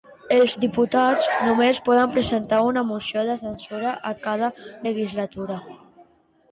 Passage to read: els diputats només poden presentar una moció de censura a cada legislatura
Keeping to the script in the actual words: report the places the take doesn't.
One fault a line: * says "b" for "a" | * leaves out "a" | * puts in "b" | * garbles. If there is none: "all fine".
all fine